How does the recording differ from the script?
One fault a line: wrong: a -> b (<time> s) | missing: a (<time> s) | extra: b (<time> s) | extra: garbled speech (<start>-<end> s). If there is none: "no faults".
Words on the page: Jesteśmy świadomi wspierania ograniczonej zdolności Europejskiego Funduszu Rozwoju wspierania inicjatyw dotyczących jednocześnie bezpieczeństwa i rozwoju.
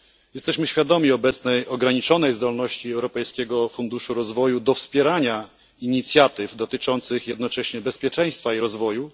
wrong: wspierania -> obecnej (1.1 s)
extra: do (4.6 s)